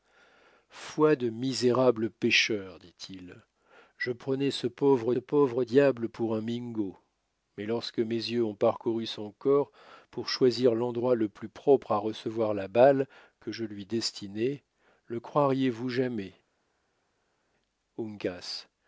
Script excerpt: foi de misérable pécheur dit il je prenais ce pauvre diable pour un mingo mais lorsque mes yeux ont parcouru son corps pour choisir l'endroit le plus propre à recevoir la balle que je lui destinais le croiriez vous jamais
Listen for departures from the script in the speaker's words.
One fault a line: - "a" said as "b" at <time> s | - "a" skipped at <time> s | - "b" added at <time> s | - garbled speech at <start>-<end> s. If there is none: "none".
- "pauvre" added at 5.2 s